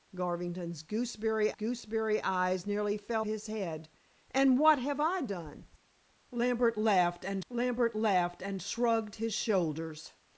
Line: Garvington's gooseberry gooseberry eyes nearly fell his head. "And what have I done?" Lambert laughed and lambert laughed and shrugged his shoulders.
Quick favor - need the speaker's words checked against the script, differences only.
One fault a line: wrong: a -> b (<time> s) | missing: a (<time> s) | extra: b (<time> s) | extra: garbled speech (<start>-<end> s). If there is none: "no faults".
no faults